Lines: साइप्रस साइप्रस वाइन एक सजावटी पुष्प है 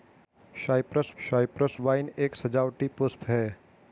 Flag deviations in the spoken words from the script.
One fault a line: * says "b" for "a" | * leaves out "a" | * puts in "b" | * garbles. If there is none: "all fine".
all fine